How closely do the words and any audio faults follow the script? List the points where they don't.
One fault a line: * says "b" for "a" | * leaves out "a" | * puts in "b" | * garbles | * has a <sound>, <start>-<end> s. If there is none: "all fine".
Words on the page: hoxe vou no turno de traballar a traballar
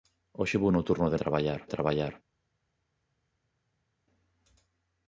all fine